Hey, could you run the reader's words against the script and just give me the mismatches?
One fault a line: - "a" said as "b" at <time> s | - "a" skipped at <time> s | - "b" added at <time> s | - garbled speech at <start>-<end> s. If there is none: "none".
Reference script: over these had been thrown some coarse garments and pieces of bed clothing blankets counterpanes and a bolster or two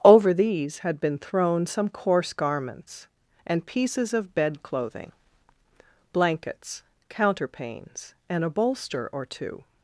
none